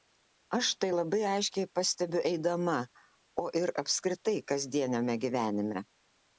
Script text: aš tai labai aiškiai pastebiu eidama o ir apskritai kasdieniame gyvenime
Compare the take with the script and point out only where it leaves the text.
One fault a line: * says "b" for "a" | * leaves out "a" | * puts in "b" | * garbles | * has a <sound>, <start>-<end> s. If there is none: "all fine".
all fine